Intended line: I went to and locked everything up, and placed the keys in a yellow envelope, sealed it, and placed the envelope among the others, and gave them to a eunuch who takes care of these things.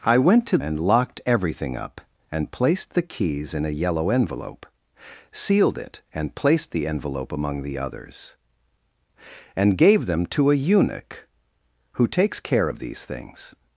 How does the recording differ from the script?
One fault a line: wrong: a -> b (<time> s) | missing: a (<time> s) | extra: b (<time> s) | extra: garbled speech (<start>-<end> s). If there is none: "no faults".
no faults